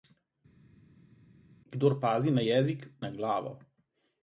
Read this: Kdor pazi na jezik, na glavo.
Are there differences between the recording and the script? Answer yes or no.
no